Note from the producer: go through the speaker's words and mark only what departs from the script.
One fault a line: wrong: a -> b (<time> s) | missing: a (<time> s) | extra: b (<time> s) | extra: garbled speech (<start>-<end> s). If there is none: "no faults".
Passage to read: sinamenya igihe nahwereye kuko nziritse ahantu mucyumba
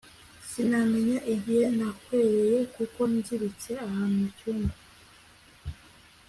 no faults